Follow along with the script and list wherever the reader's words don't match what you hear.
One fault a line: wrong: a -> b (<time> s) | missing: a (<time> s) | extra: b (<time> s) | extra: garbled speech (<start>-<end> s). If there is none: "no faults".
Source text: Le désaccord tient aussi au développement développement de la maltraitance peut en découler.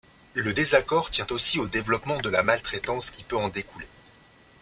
missing: développement (2.2 s)
extra: qui (3.1 s)